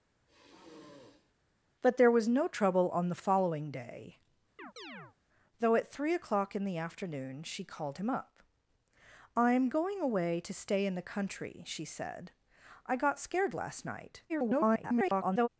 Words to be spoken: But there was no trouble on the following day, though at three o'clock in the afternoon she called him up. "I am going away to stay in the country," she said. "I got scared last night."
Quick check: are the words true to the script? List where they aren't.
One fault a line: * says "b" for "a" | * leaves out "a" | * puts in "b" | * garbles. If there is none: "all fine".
* garbles